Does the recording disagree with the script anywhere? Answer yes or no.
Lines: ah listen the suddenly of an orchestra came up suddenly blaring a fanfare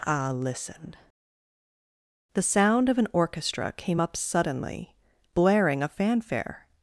yes